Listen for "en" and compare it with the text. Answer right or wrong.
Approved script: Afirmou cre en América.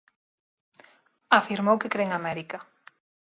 right